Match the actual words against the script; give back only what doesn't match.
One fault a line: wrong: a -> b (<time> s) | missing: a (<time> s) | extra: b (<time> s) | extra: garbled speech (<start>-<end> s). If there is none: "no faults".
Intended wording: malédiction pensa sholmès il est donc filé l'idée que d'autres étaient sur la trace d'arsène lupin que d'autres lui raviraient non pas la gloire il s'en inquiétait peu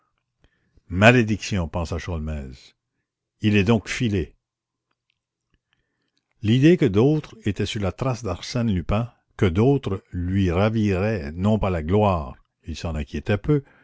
no faults